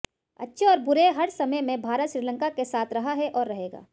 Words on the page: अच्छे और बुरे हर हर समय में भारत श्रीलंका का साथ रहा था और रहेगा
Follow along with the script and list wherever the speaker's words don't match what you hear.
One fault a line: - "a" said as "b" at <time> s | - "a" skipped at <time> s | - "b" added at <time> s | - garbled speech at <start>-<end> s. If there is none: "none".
- "हर" skipped at 1.3 s
- "का" said as "के" at 2.5 s
- "था" said as "है" at 3.1 s